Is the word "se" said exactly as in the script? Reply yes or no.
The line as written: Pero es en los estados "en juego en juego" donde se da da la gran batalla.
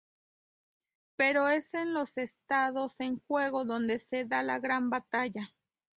yes